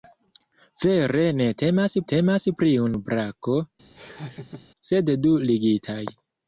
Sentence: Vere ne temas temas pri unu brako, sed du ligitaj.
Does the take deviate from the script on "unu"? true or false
false